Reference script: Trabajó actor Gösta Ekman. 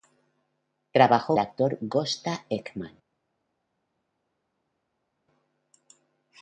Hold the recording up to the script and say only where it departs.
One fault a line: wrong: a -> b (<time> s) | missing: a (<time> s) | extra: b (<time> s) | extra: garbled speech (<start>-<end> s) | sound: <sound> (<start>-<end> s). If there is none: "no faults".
no faults